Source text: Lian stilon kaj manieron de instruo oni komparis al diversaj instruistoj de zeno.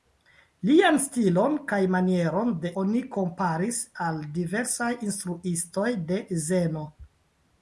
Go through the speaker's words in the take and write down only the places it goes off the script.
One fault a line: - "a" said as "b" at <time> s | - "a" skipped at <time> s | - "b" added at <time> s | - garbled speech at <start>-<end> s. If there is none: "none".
- "instruo" skipped at 2.7 s